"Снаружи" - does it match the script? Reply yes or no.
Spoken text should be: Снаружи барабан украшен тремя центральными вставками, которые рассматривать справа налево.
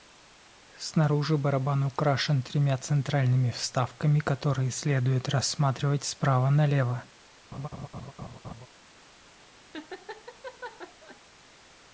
yes